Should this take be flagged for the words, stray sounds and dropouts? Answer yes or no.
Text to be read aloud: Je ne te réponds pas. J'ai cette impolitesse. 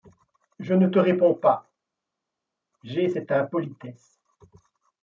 no